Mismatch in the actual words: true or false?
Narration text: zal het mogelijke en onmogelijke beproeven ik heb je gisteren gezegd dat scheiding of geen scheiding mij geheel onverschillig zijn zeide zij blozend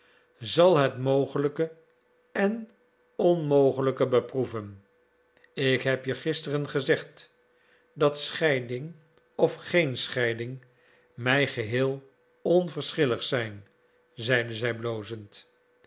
false